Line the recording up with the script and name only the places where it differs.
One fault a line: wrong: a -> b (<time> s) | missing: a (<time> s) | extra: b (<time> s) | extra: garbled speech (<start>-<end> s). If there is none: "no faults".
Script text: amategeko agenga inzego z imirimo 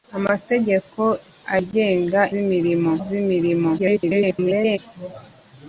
wrong: inzego -> imirimo (2.4 s)
extra: garbled speech (3.8-4.8 s)